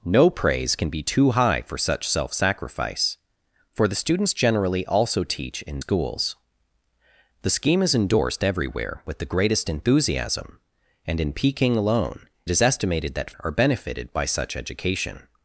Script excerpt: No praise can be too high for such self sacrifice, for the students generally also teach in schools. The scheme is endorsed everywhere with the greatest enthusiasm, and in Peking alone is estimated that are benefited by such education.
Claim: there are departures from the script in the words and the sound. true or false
false